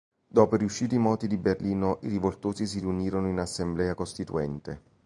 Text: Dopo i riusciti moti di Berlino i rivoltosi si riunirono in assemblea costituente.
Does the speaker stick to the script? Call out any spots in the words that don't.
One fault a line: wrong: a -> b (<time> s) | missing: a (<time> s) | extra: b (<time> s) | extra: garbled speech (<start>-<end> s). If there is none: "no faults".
no faults